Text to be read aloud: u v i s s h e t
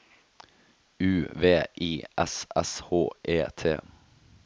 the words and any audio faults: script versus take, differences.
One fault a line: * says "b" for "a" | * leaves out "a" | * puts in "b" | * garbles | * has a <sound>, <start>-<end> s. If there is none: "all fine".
all fine